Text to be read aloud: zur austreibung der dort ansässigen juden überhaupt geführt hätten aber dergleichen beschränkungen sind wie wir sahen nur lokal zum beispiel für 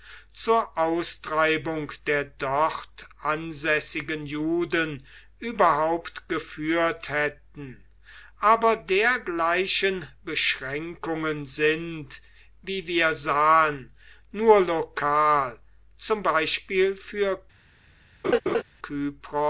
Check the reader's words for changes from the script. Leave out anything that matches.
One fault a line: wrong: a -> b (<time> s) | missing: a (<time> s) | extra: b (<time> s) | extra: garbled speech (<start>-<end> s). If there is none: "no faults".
no faults